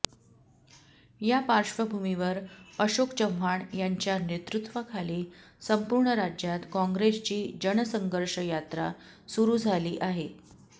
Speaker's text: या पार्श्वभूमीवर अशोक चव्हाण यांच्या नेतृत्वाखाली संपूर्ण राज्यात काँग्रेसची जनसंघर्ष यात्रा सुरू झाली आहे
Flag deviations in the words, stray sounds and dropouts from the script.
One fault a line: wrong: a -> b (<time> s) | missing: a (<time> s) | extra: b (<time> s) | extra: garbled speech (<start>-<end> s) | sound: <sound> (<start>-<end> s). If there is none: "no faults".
no faults